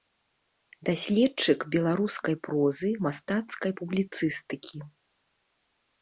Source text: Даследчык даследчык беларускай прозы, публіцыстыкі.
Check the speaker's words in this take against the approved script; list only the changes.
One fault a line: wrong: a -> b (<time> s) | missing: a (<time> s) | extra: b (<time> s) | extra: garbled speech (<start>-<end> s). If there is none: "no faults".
missing: даследчык (1.6 s)
extra: мастацкай (3.1 s)